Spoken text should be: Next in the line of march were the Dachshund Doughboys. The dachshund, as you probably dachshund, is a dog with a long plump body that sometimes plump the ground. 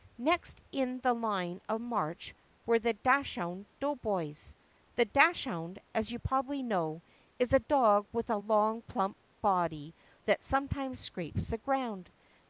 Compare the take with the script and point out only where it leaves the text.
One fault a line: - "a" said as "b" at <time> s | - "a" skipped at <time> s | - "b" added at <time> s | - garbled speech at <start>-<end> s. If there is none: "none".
- "dachshund" said as "know" at 6.6 s
- "plump" said as "scrapes" at 11.0 s